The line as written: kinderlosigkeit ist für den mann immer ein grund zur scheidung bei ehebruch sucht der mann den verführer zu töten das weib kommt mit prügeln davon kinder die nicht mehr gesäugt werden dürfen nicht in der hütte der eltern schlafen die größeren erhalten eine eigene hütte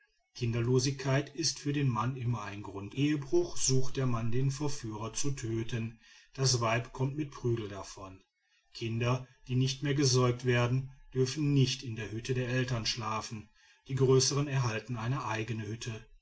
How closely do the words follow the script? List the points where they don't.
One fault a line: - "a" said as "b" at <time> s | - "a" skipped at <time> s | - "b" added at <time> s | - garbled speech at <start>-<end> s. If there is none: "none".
- "zur scheidung bei" skipped at 3.0 s